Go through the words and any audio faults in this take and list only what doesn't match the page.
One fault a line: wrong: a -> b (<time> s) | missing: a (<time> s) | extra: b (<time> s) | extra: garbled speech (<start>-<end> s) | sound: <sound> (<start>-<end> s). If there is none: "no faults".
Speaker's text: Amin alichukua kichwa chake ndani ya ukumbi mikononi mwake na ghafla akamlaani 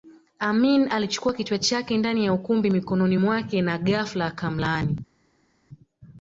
no faults